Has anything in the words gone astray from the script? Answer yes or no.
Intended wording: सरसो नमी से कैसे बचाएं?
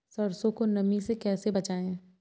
yes